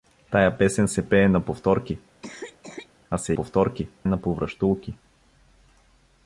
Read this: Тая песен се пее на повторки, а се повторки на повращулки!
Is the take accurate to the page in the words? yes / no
yes